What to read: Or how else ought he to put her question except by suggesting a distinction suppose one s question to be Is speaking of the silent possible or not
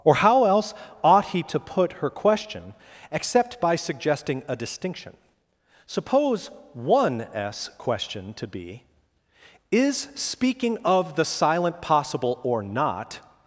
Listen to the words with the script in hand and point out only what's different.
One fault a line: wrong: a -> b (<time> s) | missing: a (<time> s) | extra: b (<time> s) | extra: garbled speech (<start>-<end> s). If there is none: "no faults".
no faults